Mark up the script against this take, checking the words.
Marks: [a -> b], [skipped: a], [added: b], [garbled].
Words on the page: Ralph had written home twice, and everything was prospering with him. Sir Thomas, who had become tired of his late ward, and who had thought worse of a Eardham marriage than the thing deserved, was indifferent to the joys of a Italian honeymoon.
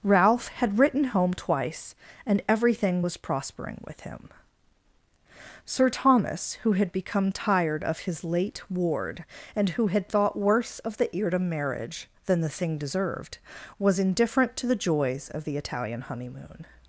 Ralph had written home twice, and everything was prospering with him. Sir Thomas, who had become tired of his late ward, and who had thought worse of [a -> the] Eardham marriage than the thing deserved, was indifferent to the joys of [a -> the] Italian honeymoon.